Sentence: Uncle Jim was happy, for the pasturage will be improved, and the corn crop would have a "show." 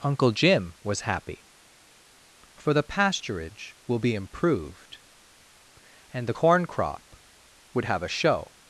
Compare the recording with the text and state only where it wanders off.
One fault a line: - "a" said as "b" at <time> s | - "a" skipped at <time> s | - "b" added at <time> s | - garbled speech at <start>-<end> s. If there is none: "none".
none